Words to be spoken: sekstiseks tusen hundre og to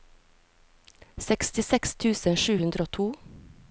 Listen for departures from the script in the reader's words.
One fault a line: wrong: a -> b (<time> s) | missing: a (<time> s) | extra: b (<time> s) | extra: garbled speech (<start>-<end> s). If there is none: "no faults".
extra: sju (2.4 s)